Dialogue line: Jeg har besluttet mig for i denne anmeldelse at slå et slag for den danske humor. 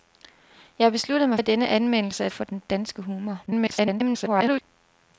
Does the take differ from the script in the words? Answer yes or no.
yes